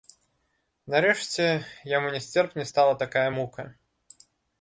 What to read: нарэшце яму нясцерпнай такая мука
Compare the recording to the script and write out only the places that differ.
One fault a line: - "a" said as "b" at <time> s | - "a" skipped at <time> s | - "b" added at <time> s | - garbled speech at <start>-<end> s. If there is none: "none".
- "стала" added at 2.7 s